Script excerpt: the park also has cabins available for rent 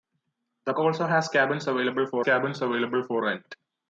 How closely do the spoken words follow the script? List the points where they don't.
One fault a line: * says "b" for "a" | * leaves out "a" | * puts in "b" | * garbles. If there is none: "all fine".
* leaves out "park"
* puts in "cabins available for"